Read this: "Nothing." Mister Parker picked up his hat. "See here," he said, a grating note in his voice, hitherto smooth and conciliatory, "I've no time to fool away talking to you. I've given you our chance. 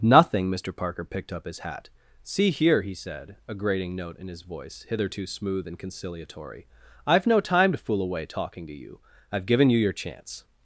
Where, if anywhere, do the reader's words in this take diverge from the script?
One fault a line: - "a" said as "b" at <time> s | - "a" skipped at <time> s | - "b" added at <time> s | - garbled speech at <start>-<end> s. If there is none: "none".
- "our" said as "your" at 9.8 s